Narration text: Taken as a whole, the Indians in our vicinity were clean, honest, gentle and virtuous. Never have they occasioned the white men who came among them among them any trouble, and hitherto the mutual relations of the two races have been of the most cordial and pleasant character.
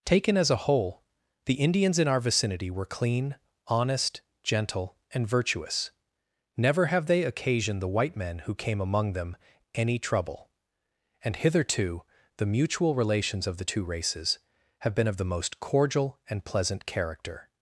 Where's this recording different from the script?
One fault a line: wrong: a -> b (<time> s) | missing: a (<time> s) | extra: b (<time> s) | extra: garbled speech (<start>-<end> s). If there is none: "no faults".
missing: among them (9.4 s)